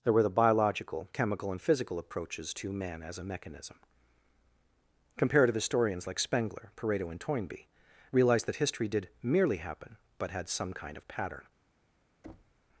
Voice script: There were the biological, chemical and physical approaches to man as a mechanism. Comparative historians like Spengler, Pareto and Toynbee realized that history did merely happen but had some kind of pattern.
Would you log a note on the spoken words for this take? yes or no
no